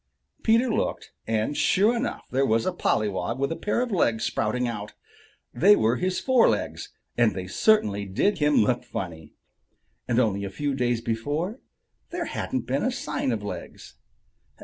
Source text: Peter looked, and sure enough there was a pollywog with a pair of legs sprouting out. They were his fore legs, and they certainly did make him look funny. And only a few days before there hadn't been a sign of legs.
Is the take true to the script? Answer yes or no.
no